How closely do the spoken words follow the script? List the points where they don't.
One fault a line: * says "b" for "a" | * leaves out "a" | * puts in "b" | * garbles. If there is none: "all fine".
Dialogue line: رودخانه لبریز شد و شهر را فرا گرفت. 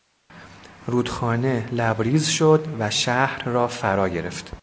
all fine